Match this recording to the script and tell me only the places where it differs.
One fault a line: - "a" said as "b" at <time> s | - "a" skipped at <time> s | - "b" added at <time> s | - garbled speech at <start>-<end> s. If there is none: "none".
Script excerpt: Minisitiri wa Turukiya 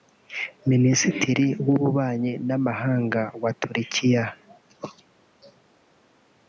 - "w'Ububanyi n'Amahanga" added at 1.6 s